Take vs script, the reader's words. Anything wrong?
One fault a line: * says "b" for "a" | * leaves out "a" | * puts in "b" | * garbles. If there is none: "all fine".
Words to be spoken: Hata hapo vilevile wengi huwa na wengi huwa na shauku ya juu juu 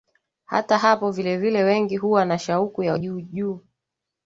* leaves out "wengi huwa na"